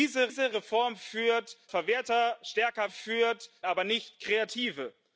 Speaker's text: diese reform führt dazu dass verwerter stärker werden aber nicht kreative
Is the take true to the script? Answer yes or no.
no